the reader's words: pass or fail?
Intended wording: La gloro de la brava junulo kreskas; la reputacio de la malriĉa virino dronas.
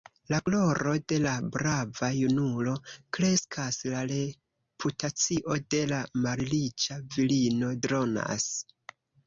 pass